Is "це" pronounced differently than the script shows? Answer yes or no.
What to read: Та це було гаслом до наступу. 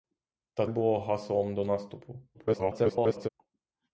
yes